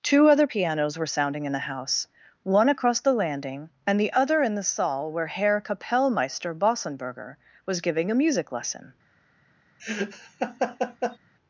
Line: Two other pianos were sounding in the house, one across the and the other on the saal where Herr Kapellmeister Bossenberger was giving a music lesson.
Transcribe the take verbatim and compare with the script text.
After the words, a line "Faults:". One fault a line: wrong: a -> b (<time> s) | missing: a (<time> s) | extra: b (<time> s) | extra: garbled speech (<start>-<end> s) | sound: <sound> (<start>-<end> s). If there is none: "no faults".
Two other pianos were sounding in the house, one across the landing and the other in the saal where Herr Kapellmeister Bossenberger was giving a music lesson.
Faults:
extra: landing (3.1 s)
wrong: on -> in (4.4 s)
sound: laugh (9.8-11.2 s)